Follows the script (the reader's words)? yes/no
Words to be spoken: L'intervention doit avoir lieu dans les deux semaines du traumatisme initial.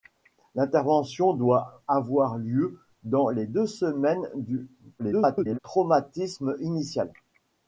no